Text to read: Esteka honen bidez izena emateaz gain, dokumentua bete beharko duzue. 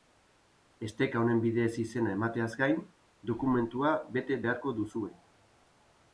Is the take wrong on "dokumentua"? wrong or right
right